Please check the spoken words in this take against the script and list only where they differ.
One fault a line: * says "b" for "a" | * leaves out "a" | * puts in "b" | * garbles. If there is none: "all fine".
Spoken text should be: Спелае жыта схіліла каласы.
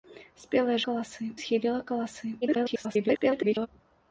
* says "каласы" for "жыта"
* garbles